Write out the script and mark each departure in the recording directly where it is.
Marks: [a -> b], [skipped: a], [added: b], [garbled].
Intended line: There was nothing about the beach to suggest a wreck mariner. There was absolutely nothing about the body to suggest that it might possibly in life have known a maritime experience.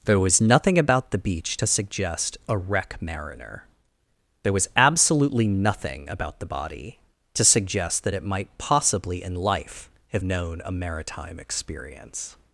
There was nothing about the beach to suggest a wreck mariner. There was absolutely nothing about the body to suggest that it might possibly in life have known a maritime experience.